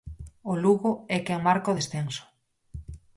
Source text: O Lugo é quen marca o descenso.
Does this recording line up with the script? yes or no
yes